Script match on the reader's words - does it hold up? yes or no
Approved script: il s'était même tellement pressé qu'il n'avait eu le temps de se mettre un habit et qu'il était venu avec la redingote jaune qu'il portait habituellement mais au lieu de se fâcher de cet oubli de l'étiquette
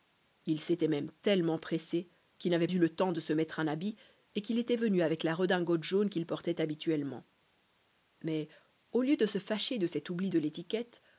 yes